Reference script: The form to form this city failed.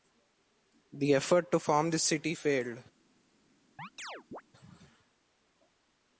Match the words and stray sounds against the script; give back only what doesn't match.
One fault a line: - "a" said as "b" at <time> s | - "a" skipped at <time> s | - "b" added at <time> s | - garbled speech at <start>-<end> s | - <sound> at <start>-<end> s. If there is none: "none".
- "form" said as "effort" at 1.1 s
- chirp at 3.8-4.4 s